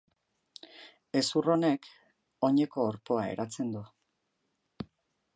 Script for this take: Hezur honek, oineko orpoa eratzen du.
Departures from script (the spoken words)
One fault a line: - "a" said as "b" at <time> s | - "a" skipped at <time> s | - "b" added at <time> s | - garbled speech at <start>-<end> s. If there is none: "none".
none